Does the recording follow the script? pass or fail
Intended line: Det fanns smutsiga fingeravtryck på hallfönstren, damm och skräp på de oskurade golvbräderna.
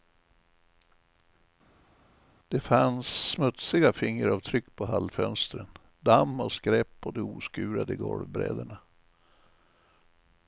pass